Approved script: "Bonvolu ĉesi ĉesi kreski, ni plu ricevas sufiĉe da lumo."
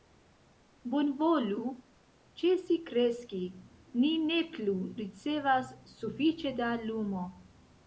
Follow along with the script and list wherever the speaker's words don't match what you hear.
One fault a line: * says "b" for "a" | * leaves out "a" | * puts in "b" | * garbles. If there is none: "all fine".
* leaves out "ĉesi"
* puts in "ne"